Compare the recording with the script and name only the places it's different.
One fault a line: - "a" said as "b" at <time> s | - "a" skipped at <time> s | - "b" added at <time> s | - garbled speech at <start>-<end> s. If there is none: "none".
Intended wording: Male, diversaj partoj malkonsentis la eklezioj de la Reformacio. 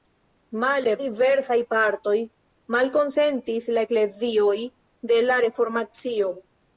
none